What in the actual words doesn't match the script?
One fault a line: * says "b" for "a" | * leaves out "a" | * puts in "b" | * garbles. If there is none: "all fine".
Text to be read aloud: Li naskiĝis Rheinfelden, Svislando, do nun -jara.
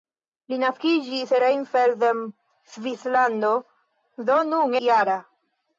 all fine